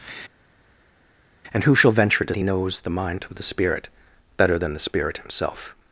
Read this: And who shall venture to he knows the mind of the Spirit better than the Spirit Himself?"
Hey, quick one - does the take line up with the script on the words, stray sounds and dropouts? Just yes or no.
yes